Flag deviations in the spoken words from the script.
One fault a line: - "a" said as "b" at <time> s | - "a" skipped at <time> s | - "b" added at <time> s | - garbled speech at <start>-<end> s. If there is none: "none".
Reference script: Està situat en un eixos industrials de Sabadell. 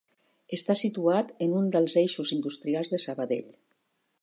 - "dels" added at 1.8 s